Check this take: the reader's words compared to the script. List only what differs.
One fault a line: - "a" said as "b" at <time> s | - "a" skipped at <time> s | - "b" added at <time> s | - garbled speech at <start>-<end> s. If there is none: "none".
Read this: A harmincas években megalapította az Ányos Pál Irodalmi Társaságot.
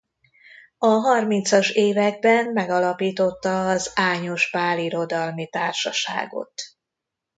none